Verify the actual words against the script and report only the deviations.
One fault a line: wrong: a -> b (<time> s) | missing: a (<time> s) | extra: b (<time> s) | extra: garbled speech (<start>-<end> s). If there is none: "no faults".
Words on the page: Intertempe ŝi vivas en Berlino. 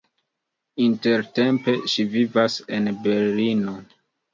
no faults